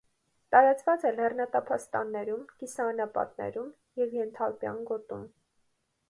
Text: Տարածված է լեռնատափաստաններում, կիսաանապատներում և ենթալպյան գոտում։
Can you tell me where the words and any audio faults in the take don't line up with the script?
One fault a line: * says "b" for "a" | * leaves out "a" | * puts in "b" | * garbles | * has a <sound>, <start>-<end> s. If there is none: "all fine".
all fine